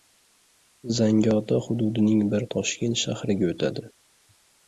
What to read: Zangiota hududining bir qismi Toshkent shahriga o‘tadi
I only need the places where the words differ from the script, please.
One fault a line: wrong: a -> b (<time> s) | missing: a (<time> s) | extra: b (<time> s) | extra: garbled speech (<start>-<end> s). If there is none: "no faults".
missing: qismi (2.5 s)